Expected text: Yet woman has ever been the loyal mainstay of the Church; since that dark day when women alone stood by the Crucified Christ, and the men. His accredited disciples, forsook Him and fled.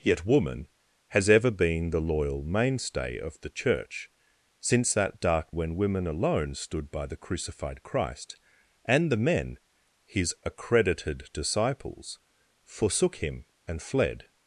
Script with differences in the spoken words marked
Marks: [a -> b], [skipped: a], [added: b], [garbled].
Yet woman has ever been the loyal mainstay of the Church; since that dark [skipped: day] when women alone stood by the Crucified Christ, and the men. His accredited disciples, forsook Him and fled.